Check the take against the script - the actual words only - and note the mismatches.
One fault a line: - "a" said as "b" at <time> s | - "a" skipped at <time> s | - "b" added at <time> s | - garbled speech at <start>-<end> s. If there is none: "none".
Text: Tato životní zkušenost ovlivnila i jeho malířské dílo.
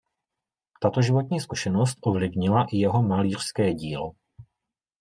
none